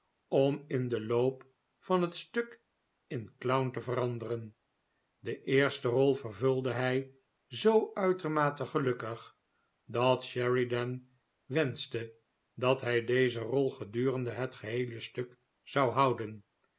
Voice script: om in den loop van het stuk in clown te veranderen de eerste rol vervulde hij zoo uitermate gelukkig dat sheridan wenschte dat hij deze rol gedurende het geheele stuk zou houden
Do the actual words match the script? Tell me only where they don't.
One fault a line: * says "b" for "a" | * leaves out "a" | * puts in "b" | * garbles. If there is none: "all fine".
all fine